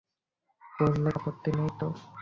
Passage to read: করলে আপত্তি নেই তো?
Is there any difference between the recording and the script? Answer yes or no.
no